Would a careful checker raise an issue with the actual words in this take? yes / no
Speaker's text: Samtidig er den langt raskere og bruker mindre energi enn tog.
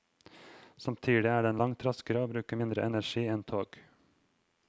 no